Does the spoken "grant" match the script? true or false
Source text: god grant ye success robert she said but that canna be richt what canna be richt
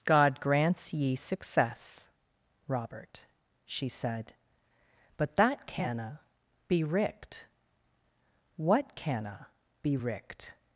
false